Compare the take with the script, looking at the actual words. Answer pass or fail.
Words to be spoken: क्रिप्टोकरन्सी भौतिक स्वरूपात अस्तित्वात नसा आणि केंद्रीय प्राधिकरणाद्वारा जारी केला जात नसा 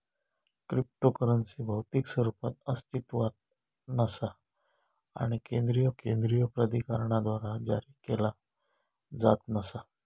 fail